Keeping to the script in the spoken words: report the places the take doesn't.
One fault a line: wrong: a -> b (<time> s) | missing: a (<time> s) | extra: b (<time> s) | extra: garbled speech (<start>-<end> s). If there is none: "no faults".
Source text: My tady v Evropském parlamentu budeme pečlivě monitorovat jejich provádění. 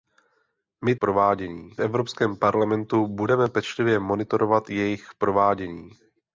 wrong: tady -> provádění (1.0 s)